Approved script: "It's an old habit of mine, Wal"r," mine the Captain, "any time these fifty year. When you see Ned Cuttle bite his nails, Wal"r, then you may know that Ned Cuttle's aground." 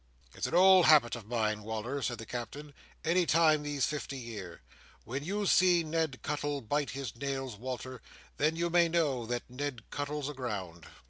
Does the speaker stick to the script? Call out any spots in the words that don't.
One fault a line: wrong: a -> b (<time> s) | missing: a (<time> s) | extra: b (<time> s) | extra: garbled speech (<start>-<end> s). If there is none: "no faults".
wrong: mine -> said (2.0 s)